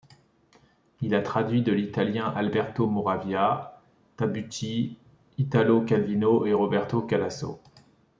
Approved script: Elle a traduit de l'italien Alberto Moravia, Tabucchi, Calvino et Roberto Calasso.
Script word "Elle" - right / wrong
wrong